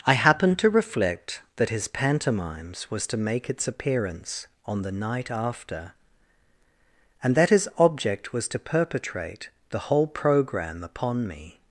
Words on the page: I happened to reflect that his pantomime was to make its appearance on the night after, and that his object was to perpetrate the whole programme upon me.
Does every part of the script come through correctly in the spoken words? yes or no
no